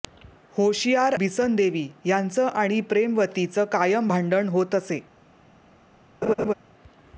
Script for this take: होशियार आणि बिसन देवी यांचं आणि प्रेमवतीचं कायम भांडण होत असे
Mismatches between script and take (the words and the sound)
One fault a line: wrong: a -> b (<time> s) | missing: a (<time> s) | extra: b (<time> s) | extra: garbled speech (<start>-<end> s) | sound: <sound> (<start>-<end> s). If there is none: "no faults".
missing: आणि (1.1 s)
sound: laugh (6.2-6.5 s)